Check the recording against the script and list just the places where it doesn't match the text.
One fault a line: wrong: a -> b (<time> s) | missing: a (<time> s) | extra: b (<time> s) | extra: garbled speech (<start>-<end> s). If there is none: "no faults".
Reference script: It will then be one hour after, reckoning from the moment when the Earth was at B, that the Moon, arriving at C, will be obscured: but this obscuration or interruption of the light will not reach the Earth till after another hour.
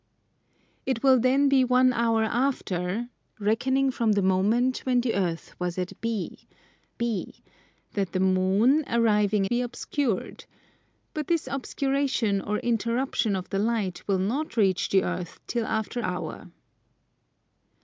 extra: B (7.0 s)
missing: at C will (9.4 s)
missing: another (16.0 s)